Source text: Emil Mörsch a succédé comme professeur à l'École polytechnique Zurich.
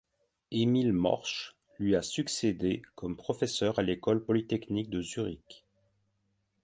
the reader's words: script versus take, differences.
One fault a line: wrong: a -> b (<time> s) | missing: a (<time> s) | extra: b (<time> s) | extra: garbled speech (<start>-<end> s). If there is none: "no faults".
extra: lui (1.8 s)
extra: de (4.9 s)